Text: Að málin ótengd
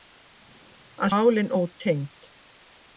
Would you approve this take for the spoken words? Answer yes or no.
yes